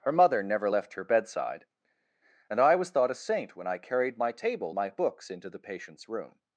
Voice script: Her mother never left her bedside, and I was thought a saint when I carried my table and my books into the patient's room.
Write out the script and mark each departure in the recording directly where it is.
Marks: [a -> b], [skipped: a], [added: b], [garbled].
Her mother never left her bedside, and I was thought a saint when I carried my table [skipped: and] my books into the patient's room.